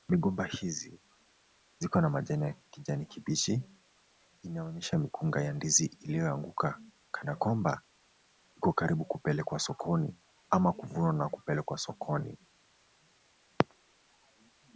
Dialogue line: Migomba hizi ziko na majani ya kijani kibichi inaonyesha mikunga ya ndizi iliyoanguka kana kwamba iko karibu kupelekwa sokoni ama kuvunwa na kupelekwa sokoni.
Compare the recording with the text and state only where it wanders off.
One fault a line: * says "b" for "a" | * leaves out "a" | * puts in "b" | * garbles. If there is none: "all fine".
all fine